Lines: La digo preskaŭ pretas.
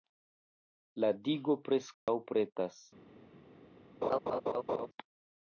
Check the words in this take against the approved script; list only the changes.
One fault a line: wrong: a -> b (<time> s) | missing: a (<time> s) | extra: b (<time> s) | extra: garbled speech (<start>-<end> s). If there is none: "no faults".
no faults